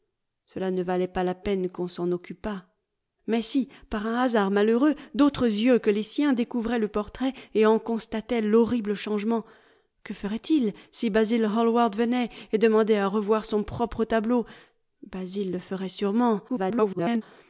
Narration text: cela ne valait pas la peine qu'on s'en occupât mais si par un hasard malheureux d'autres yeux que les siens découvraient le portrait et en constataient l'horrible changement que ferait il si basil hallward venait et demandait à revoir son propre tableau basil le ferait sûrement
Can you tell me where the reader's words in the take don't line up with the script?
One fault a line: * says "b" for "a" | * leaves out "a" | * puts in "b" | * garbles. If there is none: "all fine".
* garbles